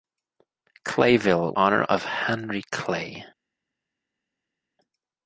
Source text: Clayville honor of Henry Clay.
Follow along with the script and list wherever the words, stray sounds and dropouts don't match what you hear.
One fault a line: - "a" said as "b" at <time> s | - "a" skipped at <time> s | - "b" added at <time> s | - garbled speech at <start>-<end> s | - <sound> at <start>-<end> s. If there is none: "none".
none